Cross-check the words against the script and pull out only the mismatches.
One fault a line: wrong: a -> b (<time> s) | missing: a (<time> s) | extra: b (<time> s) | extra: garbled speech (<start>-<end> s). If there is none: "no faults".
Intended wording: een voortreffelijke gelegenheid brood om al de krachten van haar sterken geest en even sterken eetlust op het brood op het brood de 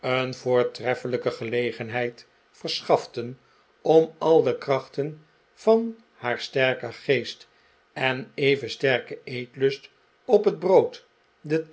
wrong: brood -> verschaften (2.5 s)
missing: op het brood (11.1 s)